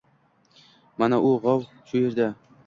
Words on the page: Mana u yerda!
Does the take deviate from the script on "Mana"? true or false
false